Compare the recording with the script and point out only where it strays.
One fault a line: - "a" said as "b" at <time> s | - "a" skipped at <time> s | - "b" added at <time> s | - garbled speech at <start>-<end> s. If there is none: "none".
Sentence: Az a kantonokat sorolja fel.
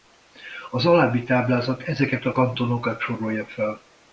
- "alábbi táblázat ezeket" added at 0.8 s